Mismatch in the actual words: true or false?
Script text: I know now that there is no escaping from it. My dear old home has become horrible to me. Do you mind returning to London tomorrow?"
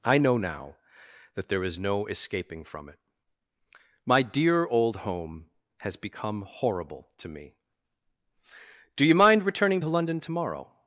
false